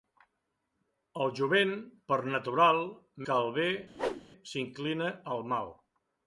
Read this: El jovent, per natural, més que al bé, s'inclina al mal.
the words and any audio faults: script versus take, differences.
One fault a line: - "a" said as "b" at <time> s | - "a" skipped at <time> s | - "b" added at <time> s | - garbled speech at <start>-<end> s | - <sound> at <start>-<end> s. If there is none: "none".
- "més" skipped at 2.8 s
- whoosh at 3.9-4.2 s